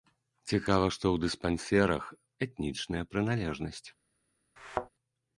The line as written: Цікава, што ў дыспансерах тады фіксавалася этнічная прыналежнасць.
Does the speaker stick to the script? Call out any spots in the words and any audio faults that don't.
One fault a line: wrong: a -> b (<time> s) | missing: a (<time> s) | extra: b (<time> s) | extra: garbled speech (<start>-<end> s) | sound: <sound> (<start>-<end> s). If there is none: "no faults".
missing: тады фіксавалася (2.0 s)
sound: thud (4.6-4.9 s)